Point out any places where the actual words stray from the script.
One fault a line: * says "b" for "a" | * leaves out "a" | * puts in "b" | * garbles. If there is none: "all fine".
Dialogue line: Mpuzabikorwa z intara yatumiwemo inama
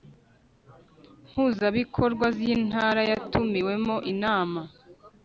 all fine